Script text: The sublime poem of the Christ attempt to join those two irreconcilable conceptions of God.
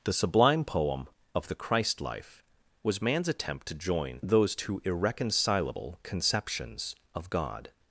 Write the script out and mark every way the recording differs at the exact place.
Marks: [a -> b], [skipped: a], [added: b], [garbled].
The sublime poem of the Christ [added: life was man's] attempt to join those two irreconcilable conceptions of God.